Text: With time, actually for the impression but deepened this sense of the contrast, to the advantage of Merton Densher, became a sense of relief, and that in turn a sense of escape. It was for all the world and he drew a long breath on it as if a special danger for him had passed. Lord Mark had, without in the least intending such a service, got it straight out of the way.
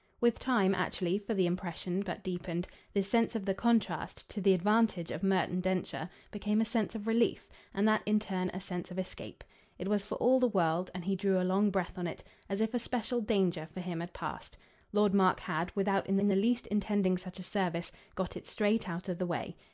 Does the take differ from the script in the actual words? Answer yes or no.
yes